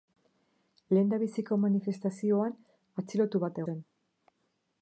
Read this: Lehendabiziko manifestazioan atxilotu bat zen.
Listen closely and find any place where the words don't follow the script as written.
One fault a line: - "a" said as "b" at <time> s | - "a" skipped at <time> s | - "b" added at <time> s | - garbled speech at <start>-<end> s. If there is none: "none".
none